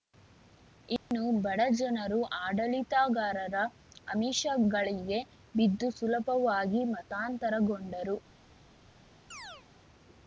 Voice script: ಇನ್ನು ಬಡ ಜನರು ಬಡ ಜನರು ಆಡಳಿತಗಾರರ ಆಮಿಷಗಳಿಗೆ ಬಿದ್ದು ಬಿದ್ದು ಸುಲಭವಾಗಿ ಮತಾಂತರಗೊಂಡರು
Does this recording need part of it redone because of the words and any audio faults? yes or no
yes